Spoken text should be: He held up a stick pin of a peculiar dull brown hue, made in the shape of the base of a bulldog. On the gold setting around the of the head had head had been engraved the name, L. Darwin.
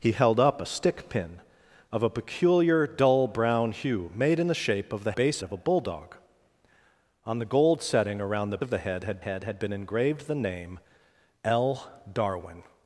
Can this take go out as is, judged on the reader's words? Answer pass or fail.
pass